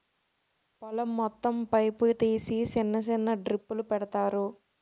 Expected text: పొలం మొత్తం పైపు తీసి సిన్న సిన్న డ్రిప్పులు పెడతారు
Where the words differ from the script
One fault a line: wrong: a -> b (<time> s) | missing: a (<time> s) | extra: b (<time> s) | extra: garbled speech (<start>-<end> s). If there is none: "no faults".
no faults